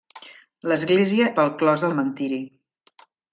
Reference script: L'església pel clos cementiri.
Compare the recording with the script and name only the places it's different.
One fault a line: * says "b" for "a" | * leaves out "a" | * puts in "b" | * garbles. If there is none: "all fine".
all fine